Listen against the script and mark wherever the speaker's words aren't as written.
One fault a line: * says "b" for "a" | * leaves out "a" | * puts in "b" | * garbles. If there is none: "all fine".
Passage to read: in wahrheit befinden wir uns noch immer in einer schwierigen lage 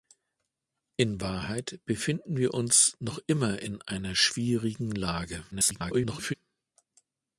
* garbles